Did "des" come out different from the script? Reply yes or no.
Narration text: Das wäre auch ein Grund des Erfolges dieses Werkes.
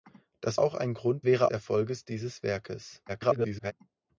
yes